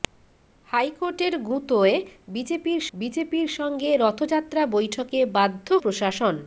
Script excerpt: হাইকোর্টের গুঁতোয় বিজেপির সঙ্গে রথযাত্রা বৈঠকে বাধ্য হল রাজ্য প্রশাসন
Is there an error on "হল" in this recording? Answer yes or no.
yes